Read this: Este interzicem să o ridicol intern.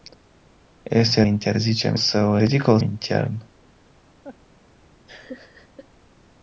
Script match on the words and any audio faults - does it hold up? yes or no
no